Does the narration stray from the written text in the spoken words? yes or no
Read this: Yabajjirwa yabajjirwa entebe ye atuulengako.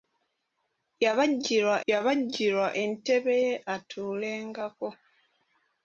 no